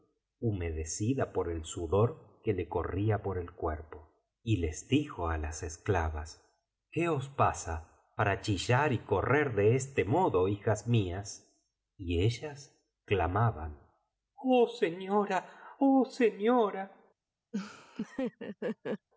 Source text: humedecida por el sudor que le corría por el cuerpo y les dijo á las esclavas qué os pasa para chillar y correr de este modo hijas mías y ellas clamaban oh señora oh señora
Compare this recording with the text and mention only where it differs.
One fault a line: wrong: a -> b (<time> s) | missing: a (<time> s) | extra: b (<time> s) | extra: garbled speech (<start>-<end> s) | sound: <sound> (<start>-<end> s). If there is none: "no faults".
sound: laugh (17.5-19.1 s)